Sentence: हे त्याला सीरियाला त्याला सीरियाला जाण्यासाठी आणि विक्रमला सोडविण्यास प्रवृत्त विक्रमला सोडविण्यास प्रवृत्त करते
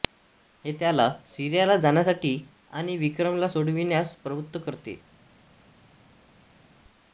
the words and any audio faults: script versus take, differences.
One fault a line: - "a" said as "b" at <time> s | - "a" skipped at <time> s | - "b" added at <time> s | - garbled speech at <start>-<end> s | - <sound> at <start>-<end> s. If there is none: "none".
- "त्याला सीरियाला" skipped at 1.8 s
- "विक्रमला सोडविण्यास प्रवृत्त" skipped at 4.6 s